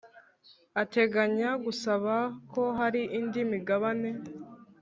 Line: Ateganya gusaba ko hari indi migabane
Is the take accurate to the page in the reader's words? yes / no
yes